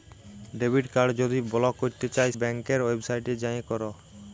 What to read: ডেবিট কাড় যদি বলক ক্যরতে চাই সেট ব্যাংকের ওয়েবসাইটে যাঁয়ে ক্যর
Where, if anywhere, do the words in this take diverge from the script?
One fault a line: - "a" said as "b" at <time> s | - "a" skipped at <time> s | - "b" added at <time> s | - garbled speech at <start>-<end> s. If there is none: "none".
- "সেট" skipped at 2.3 s